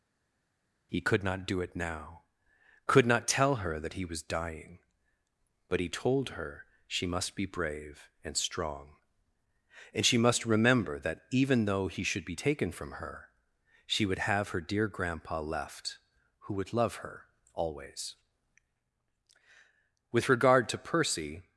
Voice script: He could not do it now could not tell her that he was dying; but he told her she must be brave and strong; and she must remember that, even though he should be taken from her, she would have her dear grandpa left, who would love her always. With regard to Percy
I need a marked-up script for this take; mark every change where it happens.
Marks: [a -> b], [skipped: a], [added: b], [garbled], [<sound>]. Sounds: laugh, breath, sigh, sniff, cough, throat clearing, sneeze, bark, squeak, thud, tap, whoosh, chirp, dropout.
He could not do it now could not tell her that he was dying; but he told her she must be brave and strong; and she must remember that, even though he should be taken from her, she would have her dear grandpa left, who would love her always. With regard to Percy